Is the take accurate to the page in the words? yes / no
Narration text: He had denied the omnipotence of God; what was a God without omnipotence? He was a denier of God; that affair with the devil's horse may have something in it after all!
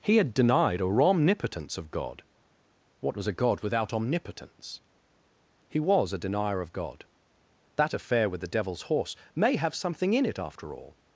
no